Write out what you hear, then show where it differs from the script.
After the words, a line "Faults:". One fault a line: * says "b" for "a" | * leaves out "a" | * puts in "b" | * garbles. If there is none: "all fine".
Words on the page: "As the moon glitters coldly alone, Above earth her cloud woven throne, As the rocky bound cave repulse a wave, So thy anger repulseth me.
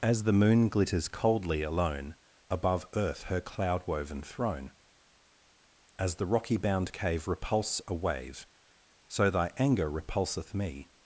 "As the moon glitters coldly alone, Above earth her cloud woven throne, As the rocky bound cave repulse a wave, So thy anger repulseth me.
Faults:
all fine